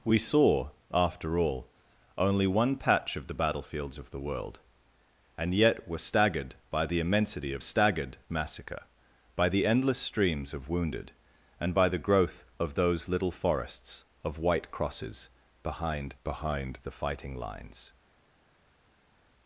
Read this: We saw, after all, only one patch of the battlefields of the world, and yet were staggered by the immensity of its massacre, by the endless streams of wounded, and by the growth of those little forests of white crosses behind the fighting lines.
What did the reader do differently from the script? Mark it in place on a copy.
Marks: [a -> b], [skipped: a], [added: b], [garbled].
We saw, after all, only one patch of the battlefields of the world, and yet were staggered by the immensity of [its -> staggered] massacre, by the endless streams of wounded, and by the growth of those little forests of white crosses behind [added: behind] the fighting lines.